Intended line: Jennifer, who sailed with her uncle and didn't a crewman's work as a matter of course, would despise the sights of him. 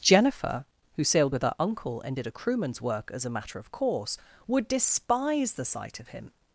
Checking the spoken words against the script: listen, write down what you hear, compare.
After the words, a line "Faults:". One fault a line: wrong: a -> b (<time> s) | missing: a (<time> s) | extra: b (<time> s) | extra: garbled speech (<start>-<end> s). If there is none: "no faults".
Jennifer, who sailed with her uncle and did a crewman's work as a matter of course, would despise the sight of him.
Faults:
wrong: didn't -> did (2.1 s)
wrong: sights -> sight (5.6 s)